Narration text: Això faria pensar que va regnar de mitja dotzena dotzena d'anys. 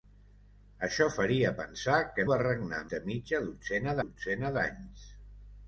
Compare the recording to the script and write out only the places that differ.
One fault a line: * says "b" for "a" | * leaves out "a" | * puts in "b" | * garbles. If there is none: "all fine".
all fine